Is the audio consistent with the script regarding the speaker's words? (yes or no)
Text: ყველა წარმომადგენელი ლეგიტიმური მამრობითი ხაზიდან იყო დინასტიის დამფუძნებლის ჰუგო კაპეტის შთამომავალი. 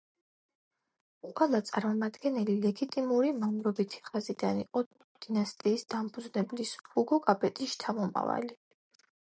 yes